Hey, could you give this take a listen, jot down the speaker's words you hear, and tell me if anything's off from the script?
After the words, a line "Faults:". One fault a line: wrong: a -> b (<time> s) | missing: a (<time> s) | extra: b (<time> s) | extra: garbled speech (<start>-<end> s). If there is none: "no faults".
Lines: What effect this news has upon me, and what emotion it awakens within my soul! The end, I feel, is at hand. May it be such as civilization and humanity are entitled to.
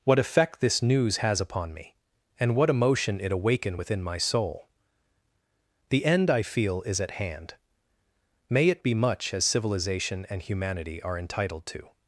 What effect this news has upon me, and what emotion it awaken within my soul! The end, I feel, is at hand. May it be much as civilization and humanity are entitled to.
Faults:
wrong: awakens -> awaken (3.3 s)
wrong: such -> much (8.9 s)